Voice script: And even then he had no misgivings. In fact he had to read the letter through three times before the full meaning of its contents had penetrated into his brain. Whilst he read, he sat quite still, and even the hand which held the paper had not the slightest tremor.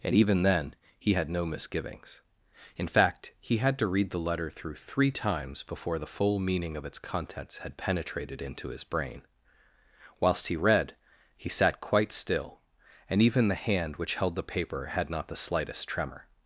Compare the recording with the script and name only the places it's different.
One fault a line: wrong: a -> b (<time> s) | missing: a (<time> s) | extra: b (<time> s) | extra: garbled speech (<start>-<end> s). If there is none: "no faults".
no faults